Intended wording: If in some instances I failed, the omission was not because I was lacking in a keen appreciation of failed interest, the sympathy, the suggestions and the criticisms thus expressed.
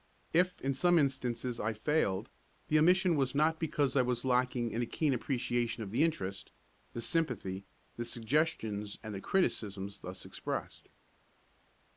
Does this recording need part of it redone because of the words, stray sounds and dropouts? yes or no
yes